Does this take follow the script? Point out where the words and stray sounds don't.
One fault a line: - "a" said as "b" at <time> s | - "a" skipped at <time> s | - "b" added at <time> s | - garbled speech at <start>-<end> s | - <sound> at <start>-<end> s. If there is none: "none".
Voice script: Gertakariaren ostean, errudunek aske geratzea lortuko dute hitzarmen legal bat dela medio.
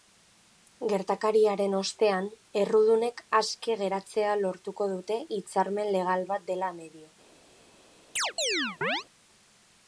- chirp at 8.2-9.0 s